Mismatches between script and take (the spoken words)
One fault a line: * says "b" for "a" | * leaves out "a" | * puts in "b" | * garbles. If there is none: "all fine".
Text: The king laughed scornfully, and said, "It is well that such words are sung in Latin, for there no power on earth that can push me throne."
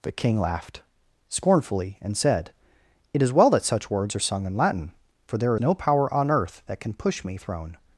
all fine